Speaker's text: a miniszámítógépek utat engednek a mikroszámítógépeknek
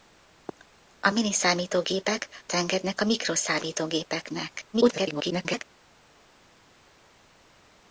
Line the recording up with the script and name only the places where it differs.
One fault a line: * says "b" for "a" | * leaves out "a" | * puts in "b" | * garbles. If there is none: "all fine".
* leaves out "utat"
* garbles